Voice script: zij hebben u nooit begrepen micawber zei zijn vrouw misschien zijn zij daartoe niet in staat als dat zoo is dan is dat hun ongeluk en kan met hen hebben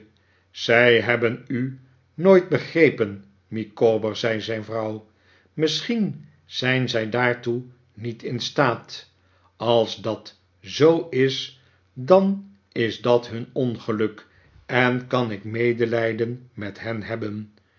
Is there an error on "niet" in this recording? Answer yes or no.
no